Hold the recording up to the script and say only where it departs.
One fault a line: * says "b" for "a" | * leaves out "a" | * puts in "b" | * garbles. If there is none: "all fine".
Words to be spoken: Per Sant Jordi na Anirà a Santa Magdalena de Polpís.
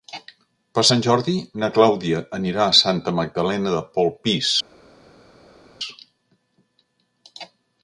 * puts in "Clàudia"